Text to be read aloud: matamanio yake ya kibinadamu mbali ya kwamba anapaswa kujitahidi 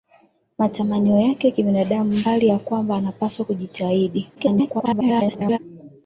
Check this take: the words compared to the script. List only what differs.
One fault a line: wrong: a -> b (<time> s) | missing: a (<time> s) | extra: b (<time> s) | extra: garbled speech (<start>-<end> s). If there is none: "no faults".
extra: garbled speech (4.4-5.6 s)